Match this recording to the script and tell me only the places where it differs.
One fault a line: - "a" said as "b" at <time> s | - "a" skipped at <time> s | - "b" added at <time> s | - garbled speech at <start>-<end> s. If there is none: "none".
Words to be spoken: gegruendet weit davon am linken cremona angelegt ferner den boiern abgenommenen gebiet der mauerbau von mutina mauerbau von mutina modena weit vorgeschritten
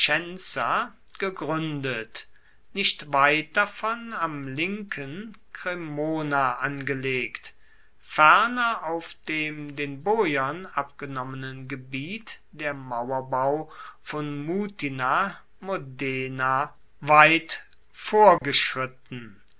- "nicht" added at 2.7 s
- "auf dem" added at 8.8 s
- "mauerbau von mutina" skipped at 15.3 s